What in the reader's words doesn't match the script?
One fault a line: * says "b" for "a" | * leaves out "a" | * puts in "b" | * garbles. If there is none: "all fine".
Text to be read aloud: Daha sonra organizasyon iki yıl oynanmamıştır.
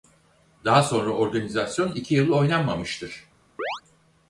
all fine